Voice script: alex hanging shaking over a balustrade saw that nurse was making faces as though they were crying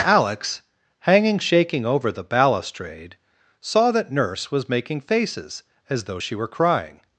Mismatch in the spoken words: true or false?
true